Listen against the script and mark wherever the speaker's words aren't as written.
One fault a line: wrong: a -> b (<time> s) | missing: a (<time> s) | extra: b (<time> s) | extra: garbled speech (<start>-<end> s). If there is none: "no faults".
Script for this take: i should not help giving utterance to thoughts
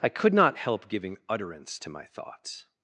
wrong: should -> could (0.1 s)
extra: my (1.9 s)